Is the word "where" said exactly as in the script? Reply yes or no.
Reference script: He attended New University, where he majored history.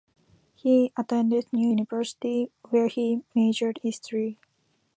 yes